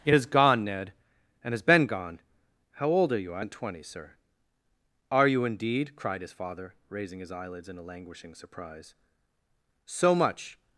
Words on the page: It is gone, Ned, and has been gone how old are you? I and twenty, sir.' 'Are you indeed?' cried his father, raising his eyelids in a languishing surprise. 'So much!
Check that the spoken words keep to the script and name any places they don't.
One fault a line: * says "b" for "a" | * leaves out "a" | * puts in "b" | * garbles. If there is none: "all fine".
all fine